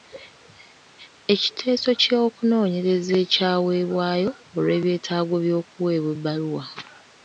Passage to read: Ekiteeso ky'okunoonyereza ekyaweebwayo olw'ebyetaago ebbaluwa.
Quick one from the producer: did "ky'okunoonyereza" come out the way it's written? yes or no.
yes